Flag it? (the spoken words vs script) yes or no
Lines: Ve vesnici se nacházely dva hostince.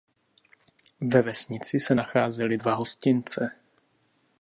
no